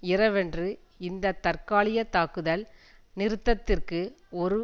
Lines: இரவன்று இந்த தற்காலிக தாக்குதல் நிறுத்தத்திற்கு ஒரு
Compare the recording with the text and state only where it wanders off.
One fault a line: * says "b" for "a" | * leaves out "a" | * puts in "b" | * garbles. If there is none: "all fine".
all fine